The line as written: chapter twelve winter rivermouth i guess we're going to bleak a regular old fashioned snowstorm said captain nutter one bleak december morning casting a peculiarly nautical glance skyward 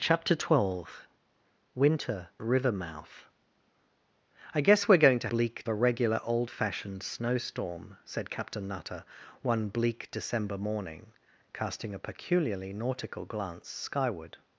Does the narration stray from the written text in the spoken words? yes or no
no